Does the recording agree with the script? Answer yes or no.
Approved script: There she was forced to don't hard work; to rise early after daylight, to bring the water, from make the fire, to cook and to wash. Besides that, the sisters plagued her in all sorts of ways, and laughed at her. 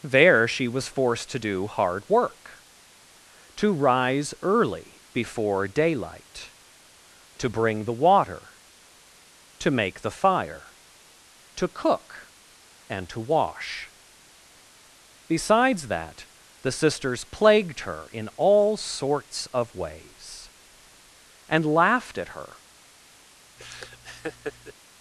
no